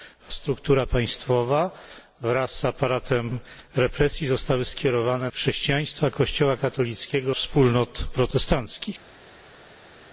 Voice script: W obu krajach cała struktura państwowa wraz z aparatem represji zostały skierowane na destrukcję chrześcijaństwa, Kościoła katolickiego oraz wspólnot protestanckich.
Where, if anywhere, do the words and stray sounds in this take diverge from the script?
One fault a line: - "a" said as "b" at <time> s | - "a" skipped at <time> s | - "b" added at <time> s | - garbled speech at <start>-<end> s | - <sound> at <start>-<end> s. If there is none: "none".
- "obu krajach cała" skipped at 0.3 s
- "na destrukcję" skipped at 5.3 s
- "oraz" skipped at 7.3 s